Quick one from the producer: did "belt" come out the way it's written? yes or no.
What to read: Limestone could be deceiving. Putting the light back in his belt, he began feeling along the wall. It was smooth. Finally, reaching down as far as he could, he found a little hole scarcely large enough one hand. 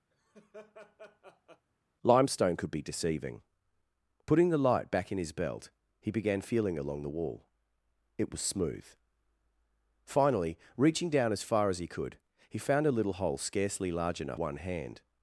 yes